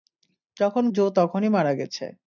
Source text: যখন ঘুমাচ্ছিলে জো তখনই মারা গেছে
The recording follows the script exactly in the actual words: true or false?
false